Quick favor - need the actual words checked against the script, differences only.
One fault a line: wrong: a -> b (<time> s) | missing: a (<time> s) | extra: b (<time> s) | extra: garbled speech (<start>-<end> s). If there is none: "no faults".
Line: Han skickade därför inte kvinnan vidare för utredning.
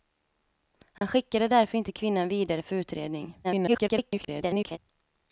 extra: garbled speech (3.4-4.8 s)